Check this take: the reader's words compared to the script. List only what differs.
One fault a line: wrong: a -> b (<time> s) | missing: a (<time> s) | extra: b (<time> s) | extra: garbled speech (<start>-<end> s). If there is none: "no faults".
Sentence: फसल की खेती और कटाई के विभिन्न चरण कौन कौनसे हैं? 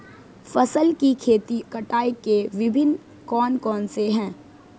missing: और (1.6 s)
missing: चरण (3.0 s)